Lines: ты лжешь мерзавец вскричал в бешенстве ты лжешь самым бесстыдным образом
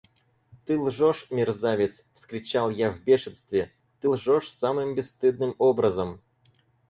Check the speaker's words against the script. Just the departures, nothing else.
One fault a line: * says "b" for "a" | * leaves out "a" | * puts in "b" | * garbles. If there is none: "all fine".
* puts in "я"